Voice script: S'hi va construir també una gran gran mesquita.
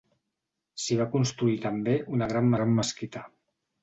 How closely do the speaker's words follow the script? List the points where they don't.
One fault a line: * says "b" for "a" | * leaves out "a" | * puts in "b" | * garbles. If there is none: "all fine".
all fine